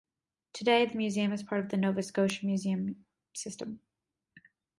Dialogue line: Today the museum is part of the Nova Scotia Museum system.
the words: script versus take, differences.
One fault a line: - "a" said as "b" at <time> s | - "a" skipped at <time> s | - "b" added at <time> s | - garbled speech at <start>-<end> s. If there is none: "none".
none